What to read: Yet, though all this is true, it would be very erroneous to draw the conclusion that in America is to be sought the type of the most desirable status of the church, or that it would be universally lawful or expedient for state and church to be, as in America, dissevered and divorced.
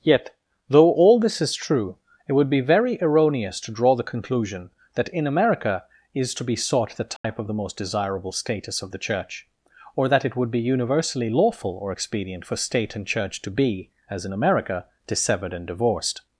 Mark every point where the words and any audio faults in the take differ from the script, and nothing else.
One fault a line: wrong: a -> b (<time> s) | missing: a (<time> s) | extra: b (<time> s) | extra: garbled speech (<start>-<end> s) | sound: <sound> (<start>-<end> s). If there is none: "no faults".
sound: dropout (7.2-7.2 s)